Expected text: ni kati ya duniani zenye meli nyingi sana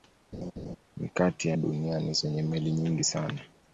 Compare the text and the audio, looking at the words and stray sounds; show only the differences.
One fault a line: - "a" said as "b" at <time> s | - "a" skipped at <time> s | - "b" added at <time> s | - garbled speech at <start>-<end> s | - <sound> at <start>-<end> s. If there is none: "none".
- laugh at 0.3-0.8 s